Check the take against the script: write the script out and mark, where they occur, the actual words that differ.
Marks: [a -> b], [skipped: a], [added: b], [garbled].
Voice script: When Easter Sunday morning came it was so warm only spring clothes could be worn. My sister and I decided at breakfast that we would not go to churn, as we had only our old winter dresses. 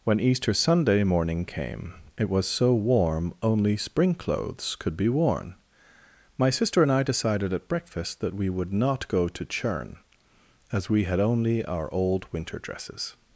When Easter Sunday morning came it was so warm only spring clothes could be worn. My sister and I decided at breakfast that we would not go to churn, as we had only our old winter dresses.